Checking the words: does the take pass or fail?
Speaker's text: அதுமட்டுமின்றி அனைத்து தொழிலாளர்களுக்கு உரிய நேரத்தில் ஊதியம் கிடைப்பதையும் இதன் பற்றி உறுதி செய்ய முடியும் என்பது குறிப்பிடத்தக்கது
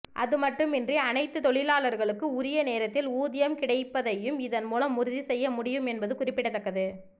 fail